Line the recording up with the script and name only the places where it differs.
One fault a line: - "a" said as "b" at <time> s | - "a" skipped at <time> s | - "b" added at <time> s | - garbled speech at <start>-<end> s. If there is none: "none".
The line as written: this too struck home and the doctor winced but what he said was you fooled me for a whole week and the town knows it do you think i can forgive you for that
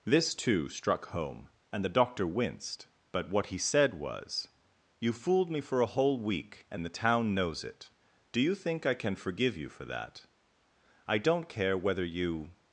- "i don't care whether you" added at 11.1 s